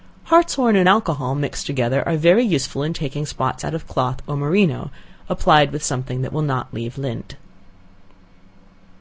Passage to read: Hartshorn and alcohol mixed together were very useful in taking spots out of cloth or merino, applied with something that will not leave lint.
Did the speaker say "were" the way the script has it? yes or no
no